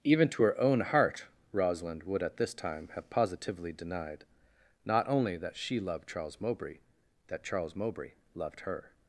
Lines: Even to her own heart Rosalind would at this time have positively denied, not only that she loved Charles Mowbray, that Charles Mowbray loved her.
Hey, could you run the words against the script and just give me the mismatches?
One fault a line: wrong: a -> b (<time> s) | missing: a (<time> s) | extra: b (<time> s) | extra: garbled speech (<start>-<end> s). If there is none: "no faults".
no faults